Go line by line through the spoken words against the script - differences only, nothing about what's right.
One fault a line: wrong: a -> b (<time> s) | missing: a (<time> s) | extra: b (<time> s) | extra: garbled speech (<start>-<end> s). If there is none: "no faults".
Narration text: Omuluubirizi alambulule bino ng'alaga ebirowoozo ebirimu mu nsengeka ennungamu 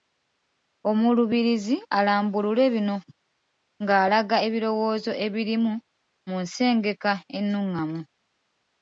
no faults